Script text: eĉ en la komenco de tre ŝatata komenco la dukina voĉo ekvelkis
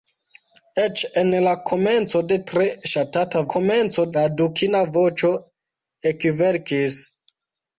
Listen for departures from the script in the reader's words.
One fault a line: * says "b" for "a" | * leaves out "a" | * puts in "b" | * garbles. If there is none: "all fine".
all fine